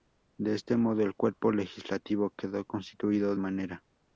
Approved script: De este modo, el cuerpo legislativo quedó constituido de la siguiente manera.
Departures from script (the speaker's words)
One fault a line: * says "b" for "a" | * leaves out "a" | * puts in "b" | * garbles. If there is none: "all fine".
* leaves out "de la siguiente"